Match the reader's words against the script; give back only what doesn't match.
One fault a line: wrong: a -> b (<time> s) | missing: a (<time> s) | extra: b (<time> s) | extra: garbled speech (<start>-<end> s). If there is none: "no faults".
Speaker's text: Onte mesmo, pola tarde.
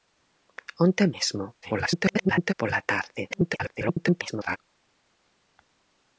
extra: garbled speech (1.6-2.5 s)
extra: garbled speech (3.3-4.6 s)